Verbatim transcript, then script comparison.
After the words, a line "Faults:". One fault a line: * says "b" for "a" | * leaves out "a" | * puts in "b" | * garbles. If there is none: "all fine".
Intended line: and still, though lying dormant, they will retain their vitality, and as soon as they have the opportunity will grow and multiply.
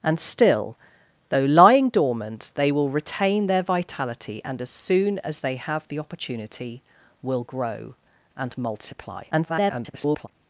and still, though lying dormant, they will retain their vitality, and as soon as they have the opportunity will grow and multiply. [garbled]
Faults:
* garbles